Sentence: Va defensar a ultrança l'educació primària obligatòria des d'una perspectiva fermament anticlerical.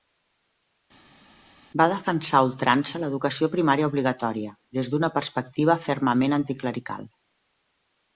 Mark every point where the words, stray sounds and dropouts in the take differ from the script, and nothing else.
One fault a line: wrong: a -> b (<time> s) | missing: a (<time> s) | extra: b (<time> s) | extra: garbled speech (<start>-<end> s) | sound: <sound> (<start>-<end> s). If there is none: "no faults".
no faults